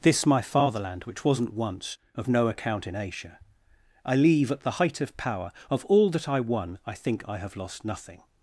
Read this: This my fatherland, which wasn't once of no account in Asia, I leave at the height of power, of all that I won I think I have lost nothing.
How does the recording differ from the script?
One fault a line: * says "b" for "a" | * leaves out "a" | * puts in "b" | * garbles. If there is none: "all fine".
all fine